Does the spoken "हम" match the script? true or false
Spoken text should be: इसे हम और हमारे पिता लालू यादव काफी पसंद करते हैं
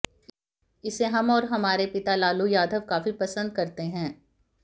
true